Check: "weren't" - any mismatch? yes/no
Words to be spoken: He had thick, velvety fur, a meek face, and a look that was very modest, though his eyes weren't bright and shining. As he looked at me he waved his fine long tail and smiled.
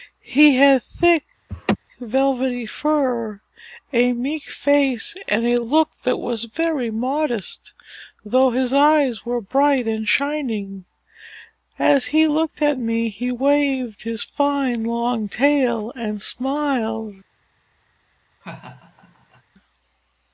yes